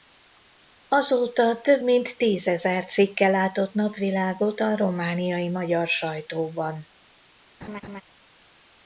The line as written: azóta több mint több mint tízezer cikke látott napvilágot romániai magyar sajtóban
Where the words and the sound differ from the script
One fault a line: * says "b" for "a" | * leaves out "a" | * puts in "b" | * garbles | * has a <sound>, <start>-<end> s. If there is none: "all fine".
* leaves out "több mint"
* puts in "a"
* has a laugh, 7.6-8.0 s